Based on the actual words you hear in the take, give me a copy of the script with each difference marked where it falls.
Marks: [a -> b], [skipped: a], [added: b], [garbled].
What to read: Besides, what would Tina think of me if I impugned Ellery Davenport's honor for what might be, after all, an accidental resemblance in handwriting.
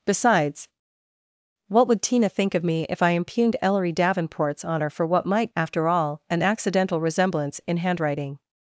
Besides, what would Tina think of me if I impugned Ellery Davenport's honor for what might [skipped: be,] after all, an accidental resemblance in handwriting.